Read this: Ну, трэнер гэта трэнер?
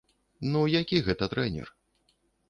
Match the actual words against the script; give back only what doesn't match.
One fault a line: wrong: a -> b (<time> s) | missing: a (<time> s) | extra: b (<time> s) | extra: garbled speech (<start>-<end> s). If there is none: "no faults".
wrong: трэнер -> які (0.8 s)